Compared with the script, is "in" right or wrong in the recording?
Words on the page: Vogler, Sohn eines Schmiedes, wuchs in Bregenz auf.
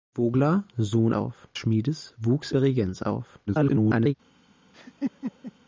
wrong